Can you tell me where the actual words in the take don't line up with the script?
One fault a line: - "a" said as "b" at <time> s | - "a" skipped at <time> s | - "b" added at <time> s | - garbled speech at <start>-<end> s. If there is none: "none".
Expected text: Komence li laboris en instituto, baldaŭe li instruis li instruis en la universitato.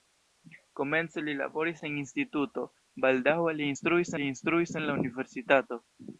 none